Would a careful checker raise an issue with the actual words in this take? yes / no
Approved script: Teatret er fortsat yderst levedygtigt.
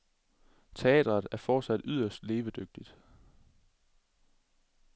no